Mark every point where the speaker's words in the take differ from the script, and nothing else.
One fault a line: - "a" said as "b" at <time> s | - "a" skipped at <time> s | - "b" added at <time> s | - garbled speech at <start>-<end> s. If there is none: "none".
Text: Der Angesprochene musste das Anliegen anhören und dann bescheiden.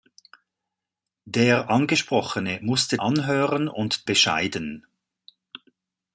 - "das Anliegen" skipped at 3.0 s
- "dann" skipped at 4.1 s